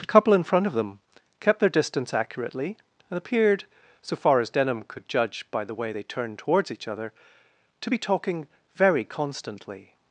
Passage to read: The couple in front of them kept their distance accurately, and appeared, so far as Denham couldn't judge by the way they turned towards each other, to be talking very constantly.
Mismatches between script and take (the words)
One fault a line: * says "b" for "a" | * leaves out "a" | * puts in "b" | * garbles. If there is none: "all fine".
* says "could" for "couldn't"